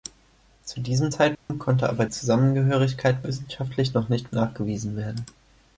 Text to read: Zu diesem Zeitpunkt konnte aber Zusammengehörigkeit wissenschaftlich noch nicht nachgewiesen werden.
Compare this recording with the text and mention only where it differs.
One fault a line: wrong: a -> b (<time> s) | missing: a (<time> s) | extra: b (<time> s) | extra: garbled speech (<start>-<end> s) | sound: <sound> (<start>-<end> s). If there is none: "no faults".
sound: dropout (1.4-1.5 s)